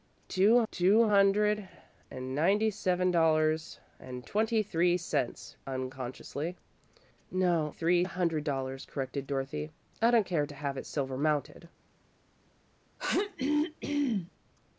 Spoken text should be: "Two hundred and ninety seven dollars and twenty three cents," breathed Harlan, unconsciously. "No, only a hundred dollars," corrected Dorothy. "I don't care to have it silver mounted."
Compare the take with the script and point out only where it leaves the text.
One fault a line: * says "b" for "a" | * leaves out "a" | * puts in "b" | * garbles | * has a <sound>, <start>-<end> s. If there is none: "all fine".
* puts in "two"
* leaves out "breathed Harlan"
* says "three" for "only"
* has a throat clearing, 13.0-14.3 s